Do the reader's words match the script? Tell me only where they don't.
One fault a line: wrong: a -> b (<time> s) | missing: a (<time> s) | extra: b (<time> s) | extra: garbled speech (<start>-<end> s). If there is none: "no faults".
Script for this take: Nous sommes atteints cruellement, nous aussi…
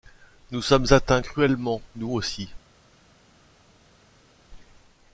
no faults